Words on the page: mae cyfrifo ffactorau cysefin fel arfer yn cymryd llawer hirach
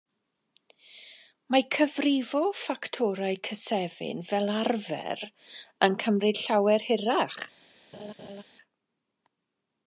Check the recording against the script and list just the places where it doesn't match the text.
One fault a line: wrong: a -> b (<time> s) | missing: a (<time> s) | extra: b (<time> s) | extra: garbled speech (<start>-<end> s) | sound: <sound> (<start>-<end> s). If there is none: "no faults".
sound: laugh (7.9-8.4 s)